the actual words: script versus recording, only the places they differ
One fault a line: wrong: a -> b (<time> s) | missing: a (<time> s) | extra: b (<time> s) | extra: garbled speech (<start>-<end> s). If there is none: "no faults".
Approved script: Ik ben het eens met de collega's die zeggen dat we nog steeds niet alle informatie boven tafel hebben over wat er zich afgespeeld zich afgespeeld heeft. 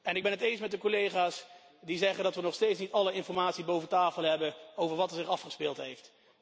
missing: zich afgespeeld (5.8 s)